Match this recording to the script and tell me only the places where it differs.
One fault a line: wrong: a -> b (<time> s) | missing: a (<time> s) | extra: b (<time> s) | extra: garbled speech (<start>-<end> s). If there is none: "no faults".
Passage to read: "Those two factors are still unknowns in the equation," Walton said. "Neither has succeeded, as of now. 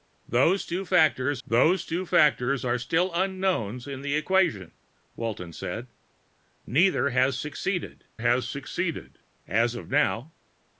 extra: those two factors (1.5 s)
extra: has succeeded (8.2 s)